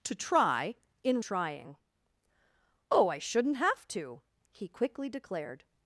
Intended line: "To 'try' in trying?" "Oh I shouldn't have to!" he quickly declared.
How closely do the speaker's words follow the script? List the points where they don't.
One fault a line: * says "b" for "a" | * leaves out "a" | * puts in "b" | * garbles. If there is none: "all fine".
all fine